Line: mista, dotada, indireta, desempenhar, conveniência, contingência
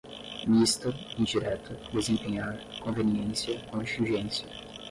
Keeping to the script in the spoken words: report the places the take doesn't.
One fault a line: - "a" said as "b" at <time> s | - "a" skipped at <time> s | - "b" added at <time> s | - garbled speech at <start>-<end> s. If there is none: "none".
- "dotada" skipped at 0.9 s